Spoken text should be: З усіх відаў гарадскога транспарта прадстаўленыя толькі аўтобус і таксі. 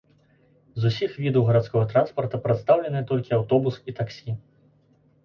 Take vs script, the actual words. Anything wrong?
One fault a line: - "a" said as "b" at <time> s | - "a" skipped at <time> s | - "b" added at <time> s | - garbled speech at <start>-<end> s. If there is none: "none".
none